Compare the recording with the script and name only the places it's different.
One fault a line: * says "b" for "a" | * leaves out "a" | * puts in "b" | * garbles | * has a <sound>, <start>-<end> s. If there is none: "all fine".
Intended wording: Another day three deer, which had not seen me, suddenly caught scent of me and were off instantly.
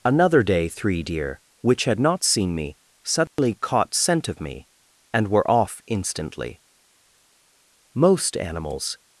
* has a dropout, 3.3-3.4 s
* puts in "Most animals"